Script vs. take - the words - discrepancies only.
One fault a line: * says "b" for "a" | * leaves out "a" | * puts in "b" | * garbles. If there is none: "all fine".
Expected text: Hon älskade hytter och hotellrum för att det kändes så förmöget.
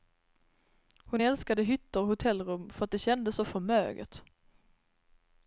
all fine